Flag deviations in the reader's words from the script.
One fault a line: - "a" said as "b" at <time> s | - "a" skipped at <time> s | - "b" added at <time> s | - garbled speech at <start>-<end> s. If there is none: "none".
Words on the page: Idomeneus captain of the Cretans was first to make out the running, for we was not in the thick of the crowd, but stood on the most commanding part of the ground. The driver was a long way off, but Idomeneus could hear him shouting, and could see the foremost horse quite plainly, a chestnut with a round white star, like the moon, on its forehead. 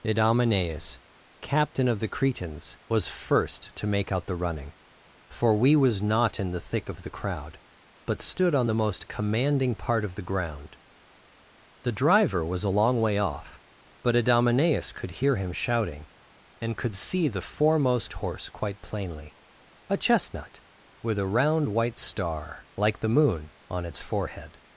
none